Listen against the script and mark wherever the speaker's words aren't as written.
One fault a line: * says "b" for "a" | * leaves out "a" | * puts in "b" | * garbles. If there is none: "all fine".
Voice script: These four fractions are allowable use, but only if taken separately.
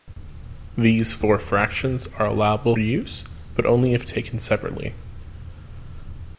all fine